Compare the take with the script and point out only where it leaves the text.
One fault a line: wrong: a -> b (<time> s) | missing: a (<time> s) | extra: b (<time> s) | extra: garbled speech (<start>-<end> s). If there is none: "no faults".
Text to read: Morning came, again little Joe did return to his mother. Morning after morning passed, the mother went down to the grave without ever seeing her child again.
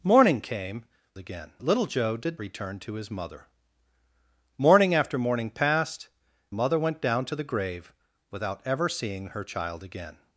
no faults